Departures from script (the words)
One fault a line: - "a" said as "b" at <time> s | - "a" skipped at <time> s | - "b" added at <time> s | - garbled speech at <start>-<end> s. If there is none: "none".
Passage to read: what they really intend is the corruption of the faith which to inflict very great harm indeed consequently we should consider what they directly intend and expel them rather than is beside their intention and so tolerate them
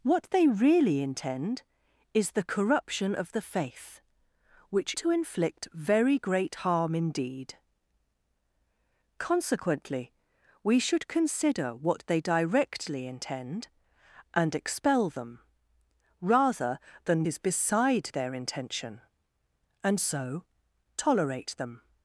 none